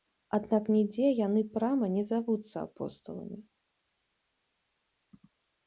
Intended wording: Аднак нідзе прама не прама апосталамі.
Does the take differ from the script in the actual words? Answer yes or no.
yes